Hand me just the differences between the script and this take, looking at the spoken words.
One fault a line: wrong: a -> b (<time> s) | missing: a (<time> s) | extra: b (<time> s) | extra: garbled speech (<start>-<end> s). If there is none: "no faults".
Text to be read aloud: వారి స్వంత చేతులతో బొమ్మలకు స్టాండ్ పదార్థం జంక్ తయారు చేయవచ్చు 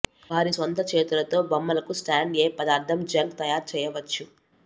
extra: ఏ (2.4 s)